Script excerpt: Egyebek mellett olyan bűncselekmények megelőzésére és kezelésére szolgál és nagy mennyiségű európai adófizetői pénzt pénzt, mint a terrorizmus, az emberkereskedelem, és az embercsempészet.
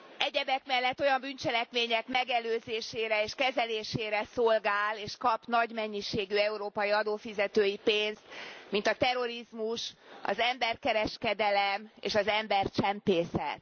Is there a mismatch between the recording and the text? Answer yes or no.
yes